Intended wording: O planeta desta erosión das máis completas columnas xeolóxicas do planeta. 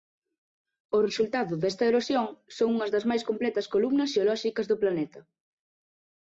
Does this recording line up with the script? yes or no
no